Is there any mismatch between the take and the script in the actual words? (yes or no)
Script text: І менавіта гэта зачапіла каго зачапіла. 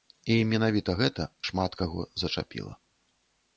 yes